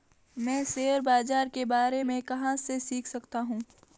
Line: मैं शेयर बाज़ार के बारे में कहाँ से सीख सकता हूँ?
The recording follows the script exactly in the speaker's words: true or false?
true